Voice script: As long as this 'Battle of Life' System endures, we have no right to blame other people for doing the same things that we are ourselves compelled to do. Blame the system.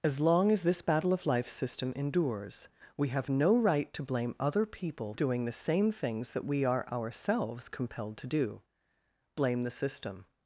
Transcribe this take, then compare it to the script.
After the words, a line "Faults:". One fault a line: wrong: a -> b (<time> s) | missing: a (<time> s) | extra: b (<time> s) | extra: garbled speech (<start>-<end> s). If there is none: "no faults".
As long as this 'Battle of Life' System endures, we have no right to blame other people doing the same things that we are ourselves compelled to do. Blame the system.
Faults:
missing: for (5.1 s)